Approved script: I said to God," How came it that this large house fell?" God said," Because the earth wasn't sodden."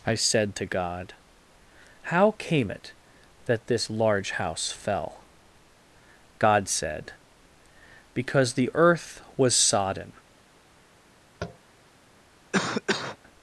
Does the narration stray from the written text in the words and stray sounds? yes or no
yes